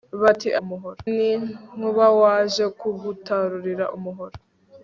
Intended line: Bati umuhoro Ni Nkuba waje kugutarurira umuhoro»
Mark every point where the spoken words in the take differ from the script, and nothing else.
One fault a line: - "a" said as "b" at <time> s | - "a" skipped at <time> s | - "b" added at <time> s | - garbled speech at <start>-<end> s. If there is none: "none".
none